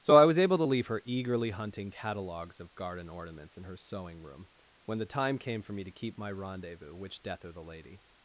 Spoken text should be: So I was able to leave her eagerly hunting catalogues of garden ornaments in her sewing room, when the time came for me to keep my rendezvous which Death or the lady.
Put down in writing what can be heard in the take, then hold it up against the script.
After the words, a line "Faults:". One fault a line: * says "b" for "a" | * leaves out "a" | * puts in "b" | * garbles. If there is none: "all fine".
So I was able to leave her eagerly hunting catalogues of garden ornaments in her sewing room, when the time came for me to keep my rendezvous which Death or the lady.
Faults:
all fine